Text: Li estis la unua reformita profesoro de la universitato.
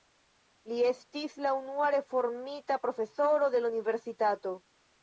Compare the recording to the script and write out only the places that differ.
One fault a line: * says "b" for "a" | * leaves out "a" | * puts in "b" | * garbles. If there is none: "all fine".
all fine